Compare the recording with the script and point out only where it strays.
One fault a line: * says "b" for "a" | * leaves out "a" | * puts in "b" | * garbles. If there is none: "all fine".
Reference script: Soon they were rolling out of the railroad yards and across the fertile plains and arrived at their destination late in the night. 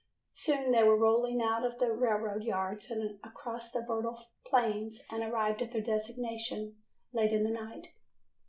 all fine